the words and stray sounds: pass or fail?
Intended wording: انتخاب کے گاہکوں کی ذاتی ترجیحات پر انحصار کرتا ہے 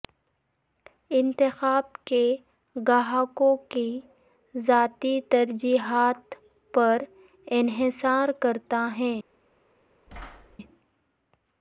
fail